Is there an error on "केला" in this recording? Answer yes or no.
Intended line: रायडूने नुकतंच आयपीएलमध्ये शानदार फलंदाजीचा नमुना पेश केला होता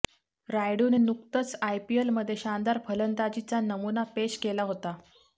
no